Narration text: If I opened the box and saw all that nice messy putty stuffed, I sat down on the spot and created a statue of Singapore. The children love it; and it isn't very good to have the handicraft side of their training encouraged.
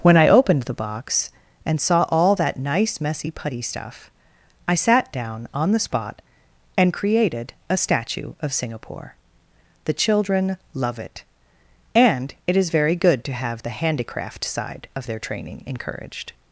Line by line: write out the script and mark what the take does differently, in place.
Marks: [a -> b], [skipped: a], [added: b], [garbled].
[If -> When] I opened the box and saw all that nice messy putty [stuffed, -> stuff] I sat down on the spot and created a statue of Singapore. The children love it; and it [isn't -> is] very good to have the handicraft side of their training encouraged.